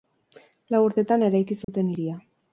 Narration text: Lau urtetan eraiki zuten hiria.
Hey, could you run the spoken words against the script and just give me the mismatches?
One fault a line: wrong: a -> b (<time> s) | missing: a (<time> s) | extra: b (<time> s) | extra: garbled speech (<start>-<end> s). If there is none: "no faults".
no faults